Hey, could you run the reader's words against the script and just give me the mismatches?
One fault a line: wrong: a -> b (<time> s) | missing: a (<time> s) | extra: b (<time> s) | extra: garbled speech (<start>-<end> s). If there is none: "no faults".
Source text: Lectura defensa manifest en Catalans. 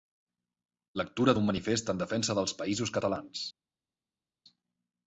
wrong: defensa -> d'un (1.4 s)
extra: defensa dels Països (2.0 s)